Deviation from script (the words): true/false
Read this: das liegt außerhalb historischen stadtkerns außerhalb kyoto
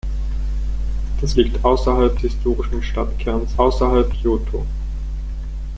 false